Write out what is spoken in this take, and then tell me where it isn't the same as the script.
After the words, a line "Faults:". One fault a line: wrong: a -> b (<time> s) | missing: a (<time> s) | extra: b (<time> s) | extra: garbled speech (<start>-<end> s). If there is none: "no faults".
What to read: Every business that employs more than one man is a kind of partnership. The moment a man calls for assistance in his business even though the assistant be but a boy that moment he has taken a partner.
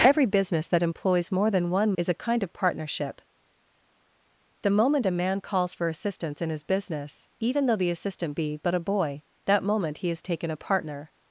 Every business that employs more than one is a kind of partnership. The moment a man calls for assistance in his business even though the assistant be but a boy that moment he has taken a partner.
Faults:
missing: man (1.9 s)